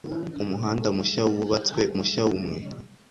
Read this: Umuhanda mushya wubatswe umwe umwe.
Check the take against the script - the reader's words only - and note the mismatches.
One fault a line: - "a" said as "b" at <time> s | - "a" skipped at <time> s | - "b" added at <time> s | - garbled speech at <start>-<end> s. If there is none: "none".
- "umwe" said as "mushya" at 1.9 s